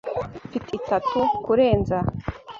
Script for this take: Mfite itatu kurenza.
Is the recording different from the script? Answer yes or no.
no